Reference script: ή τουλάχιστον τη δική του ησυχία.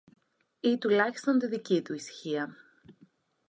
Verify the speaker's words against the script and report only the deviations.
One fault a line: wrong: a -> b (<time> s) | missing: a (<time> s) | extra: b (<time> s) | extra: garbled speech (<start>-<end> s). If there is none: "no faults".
no faults